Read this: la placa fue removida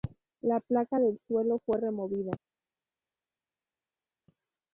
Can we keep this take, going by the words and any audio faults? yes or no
no